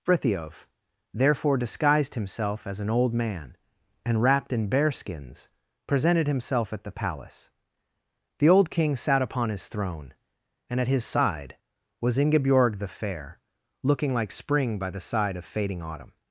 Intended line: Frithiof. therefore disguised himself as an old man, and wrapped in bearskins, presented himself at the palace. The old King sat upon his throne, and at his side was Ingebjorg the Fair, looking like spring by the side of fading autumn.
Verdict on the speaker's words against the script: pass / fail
pass